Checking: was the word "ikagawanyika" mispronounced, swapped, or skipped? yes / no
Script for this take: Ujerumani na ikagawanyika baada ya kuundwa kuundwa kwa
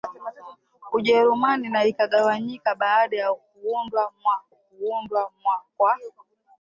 no